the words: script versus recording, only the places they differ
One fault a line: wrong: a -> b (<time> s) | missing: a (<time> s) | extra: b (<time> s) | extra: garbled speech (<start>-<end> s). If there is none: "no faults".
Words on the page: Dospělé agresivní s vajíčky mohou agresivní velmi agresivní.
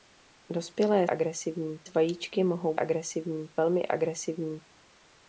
no faults